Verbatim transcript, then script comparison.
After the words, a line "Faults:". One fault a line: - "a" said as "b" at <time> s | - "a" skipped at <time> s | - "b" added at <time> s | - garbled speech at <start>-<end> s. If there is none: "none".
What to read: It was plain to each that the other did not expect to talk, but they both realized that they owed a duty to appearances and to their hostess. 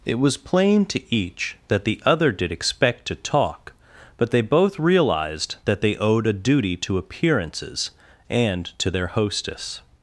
It was plain to each that the other did expect to talk, but they both realized that they owed a duty to appearances and to their hostess.
Faults:
- "not" skipped at 2.5 s